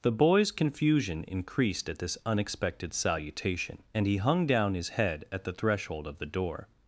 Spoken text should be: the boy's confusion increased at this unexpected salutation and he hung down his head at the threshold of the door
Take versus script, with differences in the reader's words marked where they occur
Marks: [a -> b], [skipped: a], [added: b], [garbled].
the boy's confusion increased at this unexpected salutation and he hung down his head at the threshold of the door